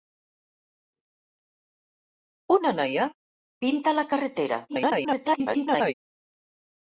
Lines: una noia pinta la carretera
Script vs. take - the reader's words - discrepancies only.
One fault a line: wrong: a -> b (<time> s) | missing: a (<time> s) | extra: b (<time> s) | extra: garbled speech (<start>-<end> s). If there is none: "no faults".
extra: garbled speech (4.7-5.9 s)